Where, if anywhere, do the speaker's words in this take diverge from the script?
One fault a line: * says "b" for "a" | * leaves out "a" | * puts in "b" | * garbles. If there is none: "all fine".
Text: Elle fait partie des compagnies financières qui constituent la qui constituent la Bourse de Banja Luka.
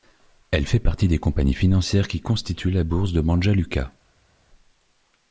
* leaves out "qui constituent la"